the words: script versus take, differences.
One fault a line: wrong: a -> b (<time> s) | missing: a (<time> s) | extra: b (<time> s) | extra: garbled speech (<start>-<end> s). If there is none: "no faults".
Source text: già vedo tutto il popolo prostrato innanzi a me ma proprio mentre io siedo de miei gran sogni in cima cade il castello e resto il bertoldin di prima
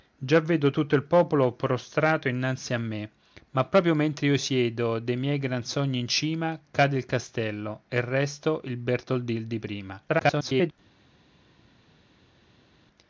extra: garbled speech (10.1-10.7 s)